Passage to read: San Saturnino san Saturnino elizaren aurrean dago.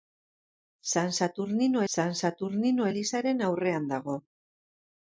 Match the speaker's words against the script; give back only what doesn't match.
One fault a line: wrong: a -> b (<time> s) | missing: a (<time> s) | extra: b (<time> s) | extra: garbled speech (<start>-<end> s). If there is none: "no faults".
no faults